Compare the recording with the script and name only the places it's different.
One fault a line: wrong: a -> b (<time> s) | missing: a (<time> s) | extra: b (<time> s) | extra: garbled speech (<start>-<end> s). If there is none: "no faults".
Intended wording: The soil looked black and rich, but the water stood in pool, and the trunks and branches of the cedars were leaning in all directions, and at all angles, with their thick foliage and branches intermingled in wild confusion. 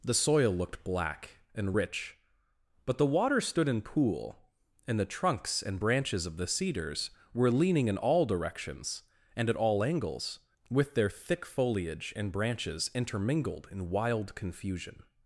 no faults